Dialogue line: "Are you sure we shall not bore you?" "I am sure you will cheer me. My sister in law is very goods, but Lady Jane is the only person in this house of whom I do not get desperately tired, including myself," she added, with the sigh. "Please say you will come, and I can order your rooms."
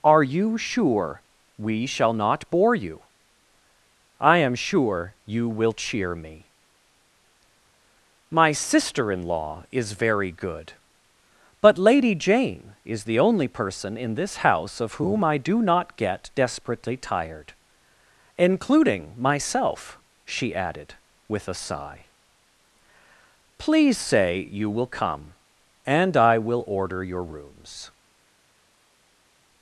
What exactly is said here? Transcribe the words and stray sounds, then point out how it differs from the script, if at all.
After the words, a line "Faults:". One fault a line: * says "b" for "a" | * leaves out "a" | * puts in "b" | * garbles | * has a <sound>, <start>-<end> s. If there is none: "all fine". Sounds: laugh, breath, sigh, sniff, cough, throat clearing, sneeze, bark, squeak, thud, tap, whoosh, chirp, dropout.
"Are you sure we shall not bore you?" "I am sure you will cheer me. My sister in law is very good, but Lady Jane is the only person in this house of whom I do not get desperately tired, including myself," she added, with a sigh. "Please say you will come, and I will order your rooms."
Faults:
* says "good" for "goods"
* says "a" for "the"
* says "will" for "can"